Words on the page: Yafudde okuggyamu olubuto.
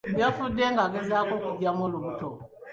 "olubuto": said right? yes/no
yes